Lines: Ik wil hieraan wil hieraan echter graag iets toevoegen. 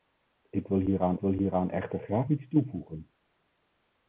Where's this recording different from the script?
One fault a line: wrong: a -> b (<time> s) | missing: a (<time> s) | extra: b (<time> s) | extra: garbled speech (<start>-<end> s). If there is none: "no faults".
no faults